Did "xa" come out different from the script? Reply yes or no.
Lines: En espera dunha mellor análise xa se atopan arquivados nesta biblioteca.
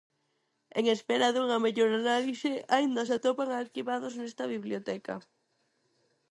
yes